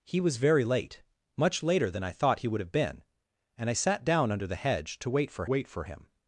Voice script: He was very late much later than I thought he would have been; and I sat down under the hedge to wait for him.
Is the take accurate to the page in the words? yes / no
no